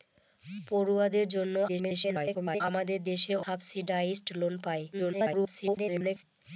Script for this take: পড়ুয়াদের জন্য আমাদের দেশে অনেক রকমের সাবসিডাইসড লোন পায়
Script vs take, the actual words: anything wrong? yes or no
yes